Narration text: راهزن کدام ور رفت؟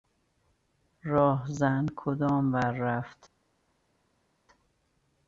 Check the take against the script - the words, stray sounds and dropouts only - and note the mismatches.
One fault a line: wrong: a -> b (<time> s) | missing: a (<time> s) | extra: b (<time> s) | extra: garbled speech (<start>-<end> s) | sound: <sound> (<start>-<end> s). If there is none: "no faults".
no faults